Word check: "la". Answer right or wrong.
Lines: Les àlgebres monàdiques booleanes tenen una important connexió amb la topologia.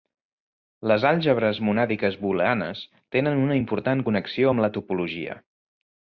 right